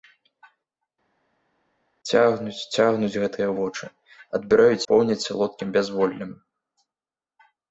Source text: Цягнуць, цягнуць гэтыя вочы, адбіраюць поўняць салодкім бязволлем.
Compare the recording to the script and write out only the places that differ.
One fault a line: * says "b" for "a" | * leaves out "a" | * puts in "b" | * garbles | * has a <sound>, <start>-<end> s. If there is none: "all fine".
all fine